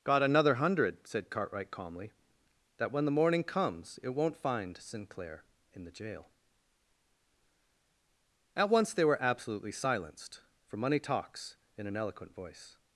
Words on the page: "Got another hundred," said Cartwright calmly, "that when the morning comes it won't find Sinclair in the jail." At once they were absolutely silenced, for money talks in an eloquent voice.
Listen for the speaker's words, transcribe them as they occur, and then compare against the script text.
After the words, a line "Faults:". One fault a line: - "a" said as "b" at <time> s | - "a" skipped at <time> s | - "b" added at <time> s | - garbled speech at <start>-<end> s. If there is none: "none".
"Got another hundred," said Cartwright calmly, "that when the morning comes it won't find Sinclair in the jail." At once they were absolutely silenced, for money talks in an eloquent voice.
Faults:
none